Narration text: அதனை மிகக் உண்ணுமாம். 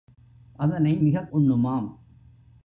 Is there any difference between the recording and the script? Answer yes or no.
no